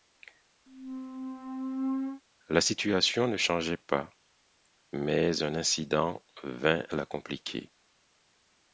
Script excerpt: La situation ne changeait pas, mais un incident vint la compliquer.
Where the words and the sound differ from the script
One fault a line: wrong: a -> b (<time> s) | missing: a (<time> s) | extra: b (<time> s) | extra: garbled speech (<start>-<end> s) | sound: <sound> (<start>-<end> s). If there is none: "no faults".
sound: squeak (0.7-2.2 s)